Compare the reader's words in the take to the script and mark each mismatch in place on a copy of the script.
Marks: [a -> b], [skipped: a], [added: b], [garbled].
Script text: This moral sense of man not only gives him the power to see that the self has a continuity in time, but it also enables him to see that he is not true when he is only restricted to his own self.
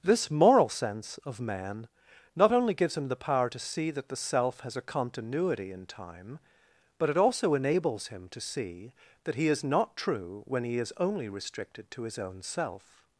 This moral sense of man not only gives him the power to see that the self has a continuity in time, but it also enables him to see that he is not true when he is only restricted to his own self.